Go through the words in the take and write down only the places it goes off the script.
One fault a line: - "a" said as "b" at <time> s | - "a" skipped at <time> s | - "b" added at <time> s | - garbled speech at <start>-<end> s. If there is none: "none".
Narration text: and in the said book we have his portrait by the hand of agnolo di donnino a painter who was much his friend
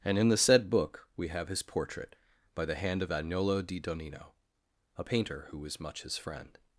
none